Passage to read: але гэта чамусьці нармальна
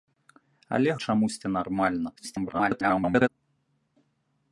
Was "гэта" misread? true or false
true